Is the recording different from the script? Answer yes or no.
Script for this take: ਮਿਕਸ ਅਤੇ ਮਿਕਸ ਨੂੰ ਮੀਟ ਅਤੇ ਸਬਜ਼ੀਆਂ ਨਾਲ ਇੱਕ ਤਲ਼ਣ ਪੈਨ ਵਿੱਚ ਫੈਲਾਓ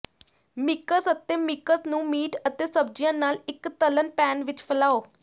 no